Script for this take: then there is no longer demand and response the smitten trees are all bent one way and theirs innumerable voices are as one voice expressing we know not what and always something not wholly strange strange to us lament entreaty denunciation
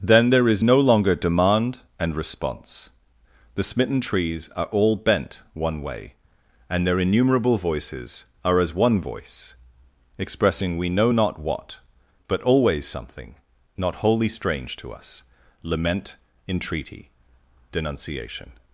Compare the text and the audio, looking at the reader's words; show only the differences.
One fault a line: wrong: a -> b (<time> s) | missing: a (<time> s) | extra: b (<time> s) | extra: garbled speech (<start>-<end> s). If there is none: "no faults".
wrong: theirs -> their (6.9 s)
wrong: and -> but (12.3 s)
missing: strange (14.7 s)